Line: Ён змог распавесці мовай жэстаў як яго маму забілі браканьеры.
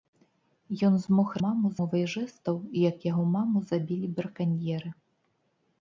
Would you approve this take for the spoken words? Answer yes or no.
no